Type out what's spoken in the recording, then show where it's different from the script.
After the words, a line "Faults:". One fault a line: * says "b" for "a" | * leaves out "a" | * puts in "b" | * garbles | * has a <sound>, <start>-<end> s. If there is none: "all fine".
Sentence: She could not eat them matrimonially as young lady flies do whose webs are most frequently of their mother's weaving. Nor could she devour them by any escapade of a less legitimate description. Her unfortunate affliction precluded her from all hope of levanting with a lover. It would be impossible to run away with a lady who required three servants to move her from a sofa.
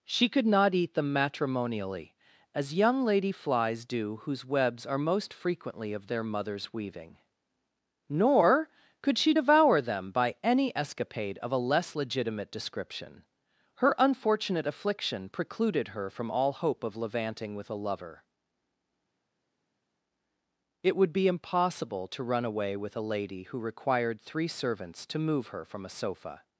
She could not eat them matrimonially as young lady flies do whose webs are most frequently of their mother's weaving. Nor could she devour them by any escapade of a less legitimate description. Her unfortunate affliction precluded her from all hope of levanting with a lover. It would be impossible to run away with a lady who required three servants to move her from a sofa.
Faults:
all fine